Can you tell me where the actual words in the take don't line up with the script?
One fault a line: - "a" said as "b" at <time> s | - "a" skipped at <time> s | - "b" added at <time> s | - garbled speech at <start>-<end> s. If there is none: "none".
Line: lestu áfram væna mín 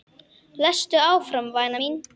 none